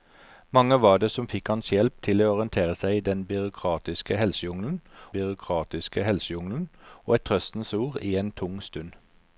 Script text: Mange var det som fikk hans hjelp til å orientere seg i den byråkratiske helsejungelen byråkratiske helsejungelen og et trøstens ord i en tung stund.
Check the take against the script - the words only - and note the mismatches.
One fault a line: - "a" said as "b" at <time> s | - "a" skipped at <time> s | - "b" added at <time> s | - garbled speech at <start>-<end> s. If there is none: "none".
none